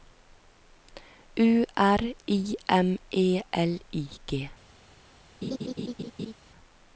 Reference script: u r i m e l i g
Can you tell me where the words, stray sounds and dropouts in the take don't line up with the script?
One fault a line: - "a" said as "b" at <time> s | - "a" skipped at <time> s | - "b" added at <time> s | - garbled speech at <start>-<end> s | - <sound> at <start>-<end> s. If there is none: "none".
- laugh at 5.4-6.3 s